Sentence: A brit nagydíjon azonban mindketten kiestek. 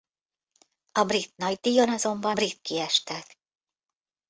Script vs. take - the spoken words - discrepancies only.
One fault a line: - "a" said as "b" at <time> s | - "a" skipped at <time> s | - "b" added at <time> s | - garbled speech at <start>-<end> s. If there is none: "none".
- "mindketten" said as "brit" at 2.3 s